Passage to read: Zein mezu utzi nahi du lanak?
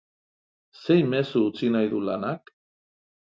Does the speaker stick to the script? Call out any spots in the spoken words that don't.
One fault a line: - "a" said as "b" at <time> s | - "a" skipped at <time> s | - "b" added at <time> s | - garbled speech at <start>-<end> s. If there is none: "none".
none